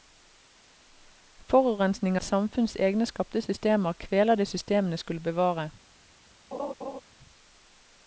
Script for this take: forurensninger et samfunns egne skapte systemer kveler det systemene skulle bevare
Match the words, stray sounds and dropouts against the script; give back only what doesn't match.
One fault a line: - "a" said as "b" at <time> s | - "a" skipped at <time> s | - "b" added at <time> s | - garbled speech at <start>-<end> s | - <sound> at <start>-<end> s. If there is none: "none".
- laugh at 6.5-7.0 s